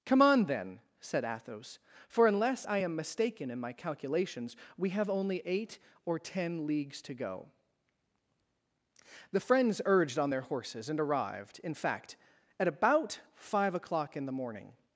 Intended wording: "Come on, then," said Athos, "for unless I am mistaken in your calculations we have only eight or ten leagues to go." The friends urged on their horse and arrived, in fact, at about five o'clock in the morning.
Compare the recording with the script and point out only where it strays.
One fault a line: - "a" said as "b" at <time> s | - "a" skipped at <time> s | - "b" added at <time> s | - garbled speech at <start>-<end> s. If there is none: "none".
- "your" said as "my" at 3.6 s
- "horse" said as "horses" at 10.4 s